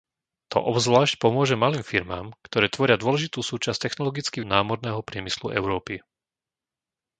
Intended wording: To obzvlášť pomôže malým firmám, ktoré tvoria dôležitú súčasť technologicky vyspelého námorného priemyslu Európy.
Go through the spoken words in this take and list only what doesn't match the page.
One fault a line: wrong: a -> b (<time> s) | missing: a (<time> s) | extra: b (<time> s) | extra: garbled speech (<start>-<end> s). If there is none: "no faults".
missing: vyspelého (4.4 s)